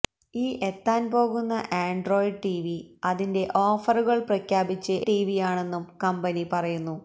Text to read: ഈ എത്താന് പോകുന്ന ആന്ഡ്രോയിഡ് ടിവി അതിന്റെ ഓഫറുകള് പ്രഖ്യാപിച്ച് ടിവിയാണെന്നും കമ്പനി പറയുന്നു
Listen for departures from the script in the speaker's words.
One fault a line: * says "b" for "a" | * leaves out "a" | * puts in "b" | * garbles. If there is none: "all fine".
all fine